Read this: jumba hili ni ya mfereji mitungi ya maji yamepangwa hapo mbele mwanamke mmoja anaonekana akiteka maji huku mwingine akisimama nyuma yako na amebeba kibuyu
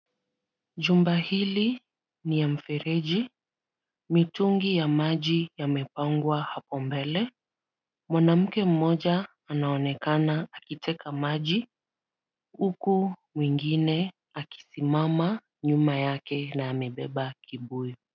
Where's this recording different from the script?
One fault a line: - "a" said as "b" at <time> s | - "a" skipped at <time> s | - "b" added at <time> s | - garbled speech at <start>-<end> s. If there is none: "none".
- "yako" said as "yake" at 16.0 s